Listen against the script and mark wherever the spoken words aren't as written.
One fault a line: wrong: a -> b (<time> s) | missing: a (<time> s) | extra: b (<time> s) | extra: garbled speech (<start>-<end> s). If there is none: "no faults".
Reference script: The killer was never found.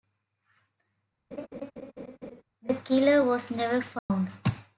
no faults